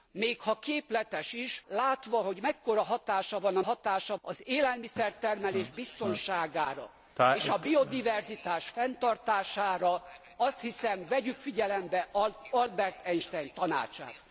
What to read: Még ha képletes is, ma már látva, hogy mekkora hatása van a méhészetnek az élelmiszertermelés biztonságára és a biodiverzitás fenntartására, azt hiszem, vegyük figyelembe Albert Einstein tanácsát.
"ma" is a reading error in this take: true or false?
true